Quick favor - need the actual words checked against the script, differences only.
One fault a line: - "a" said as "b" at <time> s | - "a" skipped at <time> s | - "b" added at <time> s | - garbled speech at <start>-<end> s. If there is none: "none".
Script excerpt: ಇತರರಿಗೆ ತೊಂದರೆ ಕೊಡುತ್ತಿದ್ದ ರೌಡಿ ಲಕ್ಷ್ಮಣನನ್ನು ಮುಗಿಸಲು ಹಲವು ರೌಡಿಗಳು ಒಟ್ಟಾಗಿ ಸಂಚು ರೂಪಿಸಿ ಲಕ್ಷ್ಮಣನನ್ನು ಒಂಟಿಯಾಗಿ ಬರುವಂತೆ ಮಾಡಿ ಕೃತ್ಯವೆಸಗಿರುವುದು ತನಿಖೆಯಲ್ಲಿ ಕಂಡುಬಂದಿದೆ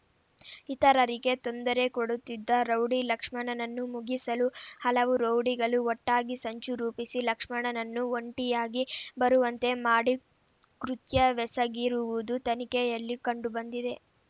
none